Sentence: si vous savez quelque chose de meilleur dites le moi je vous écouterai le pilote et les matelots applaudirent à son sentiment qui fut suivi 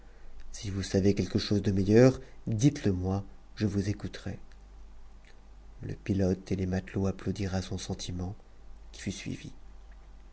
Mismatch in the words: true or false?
false